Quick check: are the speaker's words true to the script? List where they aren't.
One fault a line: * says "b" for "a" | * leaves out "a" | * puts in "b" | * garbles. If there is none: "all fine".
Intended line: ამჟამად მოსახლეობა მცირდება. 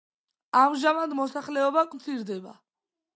all fine